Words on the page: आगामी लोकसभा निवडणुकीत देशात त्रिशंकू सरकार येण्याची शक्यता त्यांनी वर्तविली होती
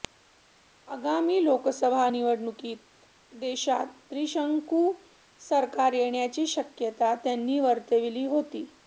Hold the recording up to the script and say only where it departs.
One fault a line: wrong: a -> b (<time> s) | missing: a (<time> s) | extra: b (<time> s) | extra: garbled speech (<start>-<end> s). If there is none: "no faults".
no faults